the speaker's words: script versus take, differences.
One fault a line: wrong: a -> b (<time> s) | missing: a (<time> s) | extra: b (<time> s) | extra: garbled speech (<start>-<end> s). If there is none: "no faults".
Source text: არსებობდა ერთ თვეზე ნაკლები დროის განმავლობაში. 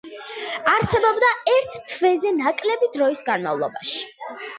no faults